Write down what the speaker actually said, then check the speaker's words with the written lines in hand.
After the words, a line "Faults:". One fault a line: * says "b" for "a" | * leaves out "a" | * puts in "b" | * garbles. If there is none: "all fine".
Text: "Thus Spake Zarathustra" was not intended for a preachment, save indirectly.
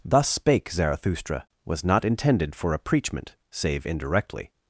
"Thus Spake Zarathustra" was not intended for a preachment, save indirectly.
Faults:
all fine